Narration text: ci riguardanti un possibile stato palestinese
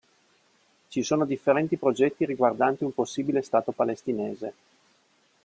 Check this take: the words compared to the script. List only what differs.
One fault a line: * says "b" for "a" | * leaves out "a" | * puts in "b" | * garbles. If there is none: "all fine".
* puts in "sono differenti progetti"